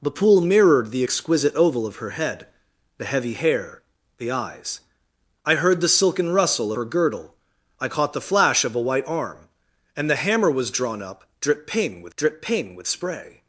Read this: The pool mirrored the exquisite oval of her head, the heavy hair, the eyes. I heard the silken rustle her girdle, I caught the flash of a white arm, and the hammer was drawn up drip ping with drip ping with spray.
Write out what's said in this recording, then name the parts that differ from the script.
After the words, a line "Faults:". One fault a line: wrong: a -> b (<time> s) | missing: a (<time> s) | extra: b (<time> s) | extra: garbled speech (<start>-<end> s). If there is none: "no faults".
The pool mirrored the exquisite oval of her head, the heavy hair, the eyes. I heard the silken rustle her girdle, I caught the flash of a white arm, and the hammer was drawn up drip ping with drip ping with spray.
Faults:
no faults